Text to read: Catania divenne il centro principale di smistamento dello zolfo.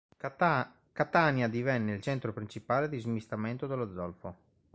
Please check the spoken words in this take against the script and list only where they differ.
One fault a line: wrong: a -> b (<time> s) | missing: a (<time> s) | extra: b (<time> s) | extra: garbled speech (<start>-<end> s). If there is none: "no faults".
no faults